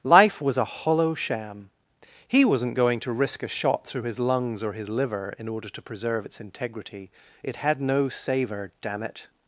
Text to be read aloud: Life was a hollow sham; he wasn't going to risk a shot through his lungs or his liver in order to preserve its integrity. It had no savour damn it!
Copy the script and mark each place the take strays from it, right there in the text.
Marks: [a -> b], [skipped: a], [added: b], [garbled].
Life was a hollow sham; he wasn't going to risk a shot through his lungs or his liver in order to preserve its integrity. It had no savour damn it!